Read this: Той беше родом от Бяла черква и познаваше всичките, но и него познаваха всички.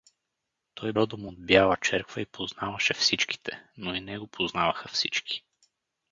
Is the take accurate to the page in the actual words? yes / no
no